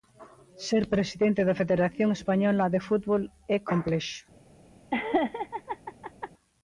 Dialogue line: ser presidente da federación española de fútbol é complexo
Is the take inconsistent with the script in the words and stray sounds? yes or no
yes